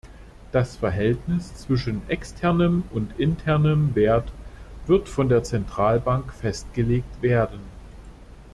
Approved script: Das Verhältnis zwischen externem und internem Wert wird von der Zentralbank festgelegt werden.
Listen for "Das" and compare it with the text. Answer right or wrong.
right